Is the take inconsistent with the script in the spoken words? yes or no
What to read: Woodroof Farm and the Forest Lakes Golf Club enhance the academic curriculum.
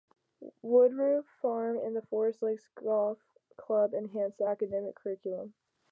no